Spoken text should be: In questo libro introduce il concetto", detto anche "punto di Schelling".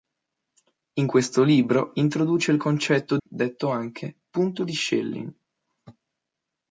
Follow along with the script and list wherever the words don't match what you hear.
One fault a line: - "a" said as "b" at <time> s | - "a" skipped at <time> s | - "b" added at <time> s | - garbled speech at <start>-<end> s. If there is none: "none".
none